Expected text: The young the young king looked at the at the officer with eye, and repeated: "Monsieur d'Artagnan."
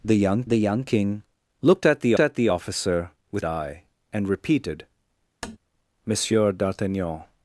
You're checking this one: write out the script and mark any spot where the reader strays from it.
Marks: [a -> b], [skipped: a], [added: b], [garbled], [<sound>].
The young the young king looked at the at the officer with eye, and repeated: [tap] "Monsieur d'Artagnan."